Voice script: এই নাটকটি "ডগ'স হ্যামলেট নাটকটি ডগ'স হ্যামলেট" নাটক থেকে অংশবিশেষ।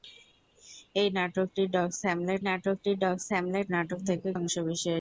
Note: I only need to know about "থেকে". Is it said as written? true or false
true